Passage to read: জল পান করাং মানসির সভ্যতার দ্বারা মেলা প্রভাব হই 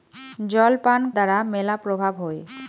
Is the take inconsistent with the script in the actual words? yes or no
yes